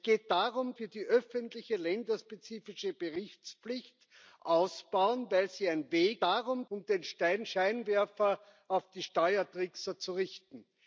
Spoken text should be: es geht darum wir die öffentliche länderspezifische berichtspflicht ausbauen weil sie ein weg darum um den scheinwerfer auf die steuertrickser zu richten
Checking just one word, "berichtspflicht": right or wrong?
right